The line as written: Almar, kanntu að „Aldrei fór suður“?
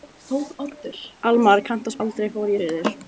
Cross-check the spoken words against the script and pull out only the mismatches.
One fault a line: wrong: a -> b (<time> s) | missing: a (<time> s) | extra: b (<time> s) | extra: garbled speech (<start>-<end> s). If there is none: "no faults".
no faults